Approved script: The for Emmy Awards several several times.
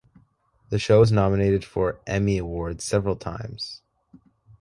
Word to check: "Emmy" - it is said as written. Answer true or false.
true